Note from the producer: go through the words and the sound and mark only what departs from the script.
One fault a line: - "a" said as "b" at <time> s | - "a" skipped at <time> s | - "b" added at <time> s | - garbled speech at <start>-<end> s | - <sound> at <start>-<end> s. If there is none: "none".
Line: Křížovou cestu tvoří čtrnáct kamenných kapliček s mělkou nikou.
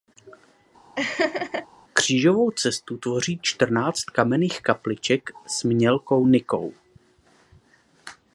- laugh at 1.0-1.7 s